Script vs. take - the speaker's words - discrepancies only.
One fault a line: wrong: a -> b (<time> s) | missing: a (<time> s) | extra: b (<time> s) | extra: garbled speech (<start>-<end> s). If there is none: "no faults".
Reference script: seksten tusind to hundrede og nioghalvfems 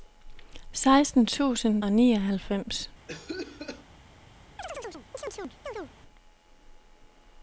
missing: to hundrede (1.8 s)